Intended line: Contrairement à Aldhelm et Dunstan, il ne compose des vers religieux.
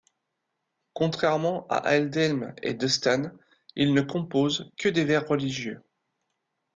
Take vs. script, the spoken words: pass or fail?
fail